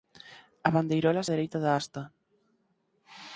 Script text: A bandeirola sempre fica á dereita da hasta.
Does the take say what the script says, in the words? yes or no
no